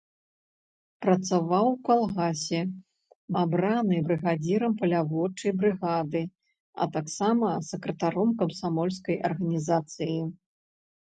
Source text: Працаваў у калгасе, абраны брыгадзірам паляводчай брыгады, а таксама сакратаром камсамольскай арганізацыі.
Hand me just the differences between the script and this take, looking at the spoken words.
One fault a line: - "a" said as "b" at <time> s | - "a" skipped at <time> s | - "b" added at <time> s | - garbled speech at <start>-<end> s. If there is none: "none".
none